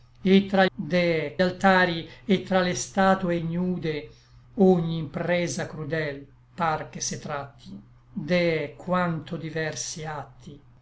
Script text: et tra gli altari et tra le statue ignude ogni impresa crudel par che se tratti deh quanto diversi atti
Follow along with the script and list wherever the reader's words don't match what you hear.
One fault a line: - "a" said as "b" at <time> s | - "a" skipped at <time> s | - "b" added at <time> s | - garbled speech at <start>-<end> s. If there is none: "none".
- "gli" said as "deh" at 0.7 s